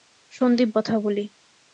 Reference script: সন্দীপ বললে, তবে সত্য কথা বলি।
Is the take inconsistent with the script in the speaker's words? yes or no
yes